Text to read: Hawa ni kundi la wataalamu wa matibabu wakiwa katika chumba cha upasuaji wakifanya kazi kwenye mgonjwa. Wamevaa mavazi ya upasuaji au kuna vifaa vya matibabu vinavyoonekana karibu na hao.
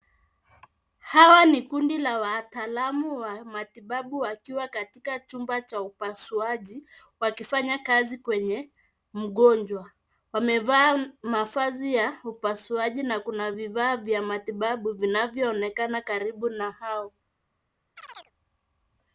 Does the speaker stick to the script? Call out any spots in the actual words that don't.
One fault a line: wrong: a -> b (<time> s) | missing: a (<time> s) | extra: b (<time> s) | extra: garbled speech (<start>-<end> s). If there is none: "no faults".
wrong: au -> na (13.0 s)